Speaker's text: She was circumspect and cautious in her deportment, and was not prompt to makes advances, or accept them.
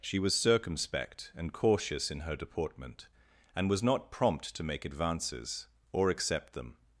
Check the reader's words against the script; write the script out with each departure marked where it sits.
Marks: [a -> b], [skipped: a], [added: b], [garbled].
She was circumspect and cautious in her deportment, and was not prompt to [makes -> make] advances, or accept them.